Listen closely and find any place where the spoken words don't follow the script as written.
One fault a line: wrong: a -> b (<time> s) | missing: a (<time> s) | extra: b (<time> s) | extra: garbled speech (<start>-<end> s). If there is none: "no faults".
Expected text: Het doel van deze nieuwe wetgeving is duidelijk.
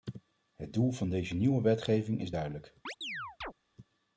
no faults